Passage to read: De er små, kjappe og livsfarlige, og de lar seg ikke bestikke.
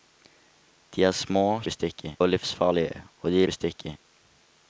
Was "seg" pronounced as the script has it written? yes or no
no